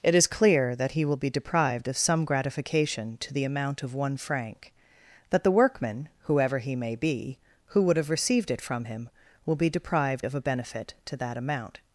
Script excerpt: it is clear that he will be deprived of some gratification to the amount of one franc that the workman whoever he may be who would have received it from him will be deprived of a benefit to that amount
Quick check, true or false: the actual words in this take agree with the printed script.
true